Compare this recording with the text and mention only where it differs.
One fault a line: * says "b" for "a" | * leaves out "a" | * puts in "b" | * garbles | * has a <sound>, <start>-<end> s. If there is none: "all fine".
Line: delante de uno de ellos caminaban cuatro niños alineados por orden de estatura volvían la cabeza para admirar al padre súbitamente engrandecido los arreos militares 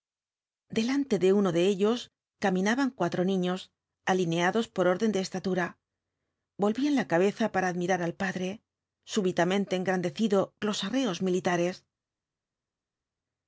all fine